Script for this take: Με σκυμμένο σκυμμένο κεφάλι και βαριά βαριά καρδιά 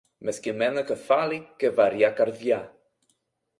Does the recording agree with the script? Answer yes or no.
no